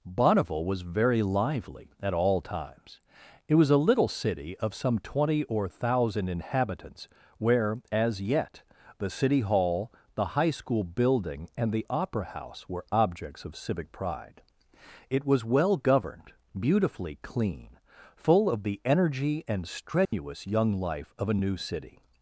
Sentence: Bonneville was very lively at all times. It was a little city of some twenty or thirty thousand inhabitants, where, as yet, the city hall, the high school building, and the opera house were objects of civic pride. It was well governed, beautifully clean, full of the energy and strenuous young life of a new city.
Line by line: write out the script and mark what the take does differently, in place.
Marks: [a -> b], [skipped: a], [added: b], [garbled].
Bonneville was very lively at all times. It was a little city of some twenty or [skipped: thirty] thousand inhabitants, where, as yet, the city hall, the high school building, and the opera house were objects of civic pride. It was well governed, beautifully clean, full of the energy and strenuous young life of a new city.